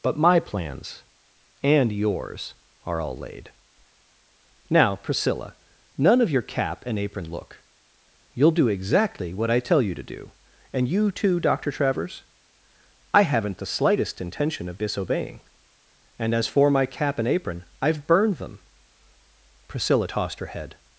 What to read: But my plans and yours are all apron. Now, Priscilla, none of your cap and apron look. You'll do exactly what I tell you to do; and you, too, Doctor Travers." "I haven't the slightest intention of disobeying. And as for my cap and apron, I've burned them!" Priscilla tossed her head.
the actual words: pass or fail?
fail